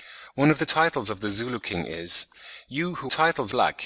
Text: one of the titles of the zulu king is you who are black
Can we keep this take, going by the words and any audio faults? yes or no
no